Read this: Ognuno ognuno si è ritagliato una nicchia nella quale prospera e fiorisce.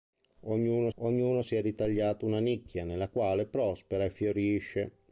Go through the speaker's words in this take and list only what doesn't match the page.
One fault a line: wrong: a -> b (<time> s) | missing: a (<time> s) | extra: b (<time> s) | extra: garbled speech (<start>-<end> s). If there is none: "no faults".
no faults